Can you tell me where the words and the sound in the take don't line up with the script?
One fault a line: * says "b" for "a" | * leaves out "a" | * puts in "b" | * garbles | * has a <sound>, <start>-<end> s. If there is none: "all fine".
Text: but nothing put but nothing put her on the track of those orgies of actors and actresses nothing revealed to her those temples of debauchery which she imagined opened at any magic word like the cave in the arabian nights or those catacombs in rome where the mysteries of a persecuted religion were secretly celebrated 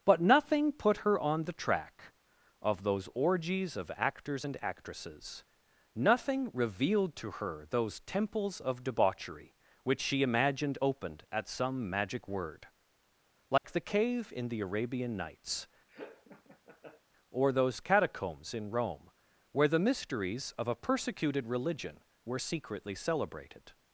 * leaves out "but nothing put"
* says "some" for "any"
* has a dropout, 13.6-13.6 s
* has a laugh, 15.9-17.0 s